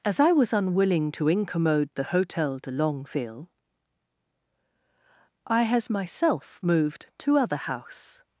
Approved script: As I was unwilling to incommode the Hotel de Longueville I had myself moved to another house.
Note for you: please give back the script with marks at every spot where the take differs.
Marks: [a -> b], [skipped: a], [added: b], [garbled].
As I was unwilling to incommode the Hotel de Longueville I [had -> has] myself moved to [another -> other] house.